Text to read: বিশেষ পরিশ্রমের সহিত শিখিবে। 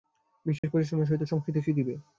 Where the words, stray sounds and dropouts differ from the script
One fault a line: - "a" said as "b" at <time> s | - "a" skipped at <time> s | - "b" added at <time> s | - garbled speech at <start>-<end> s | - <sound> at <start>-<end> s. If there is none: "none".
- dropout at 0.6-0.6 s
- "সংস্কৃত" added at 1.2 s